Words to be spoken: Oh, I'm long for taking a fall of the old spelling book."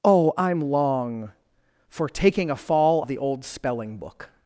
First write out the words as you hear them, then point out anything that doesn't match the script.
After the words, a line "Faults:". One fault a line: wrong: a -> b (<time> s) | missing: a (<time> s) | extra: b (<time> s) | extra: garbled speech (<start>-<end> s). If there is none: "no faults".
Oh, I'm long for taking a fall of the old spelling book."
Faults:
no faults